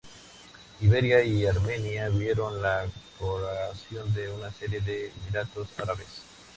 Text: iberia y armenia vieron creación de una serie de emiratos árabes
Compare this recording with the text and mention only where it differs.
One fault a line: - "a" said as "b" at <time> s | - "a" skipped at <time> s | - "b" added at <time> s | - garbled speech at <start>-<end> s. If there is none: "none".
- "la" added at 2.6 s